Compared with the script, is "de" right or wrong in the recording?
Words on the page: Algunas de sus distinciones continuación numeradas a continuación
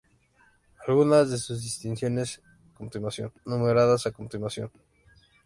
right